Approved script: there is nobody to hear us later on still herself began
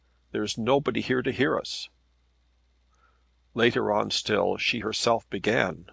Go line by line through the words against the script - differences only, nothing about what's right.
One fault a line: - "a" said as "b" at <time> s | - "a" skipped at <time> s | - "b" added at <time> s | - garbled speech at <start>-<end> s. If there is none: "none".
- "here" added at 1.0 s
- "she" added at 4.6 s